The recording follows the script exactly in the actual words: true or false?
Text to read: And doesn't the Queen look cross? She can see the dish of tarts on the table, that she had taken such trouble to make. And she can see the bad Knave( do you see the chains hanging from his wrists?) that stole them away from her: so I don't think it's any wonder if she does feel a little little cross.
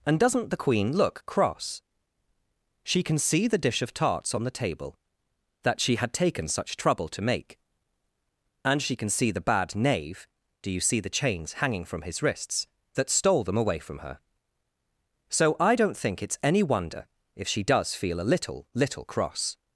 true